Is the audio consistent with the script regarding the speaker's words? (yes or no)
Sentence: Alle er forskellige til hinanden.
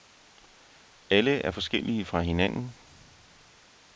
no